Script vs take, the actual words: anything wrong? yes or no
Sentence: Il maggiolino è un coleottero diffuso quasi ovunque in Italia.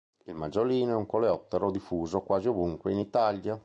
no